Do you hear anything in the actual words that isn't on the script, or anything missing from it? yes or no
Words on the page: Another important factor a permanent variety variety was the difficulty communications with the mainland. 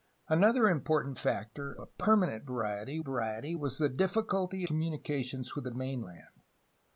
no